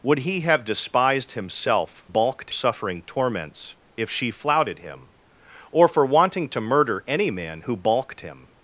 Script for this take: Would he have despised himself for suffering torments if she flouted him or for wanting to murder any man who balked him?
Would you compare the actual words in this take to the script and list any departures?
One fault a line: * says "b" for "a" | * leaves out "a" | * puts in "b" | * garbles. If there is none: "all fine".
* says "balked" for "for"